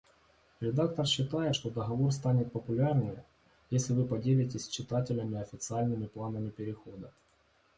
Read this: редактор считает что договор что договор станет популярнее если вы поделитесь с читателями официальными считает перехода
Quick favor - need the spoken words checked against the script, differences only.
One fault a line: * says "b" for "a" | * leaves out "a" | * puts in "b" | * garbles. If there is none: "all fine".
* leaves out "что договор"
* says "планами" for "считает"